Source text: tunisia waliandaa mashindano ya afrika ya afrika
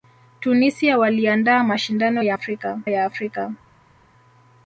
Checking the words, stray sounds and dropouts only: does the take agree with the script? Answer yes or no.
yes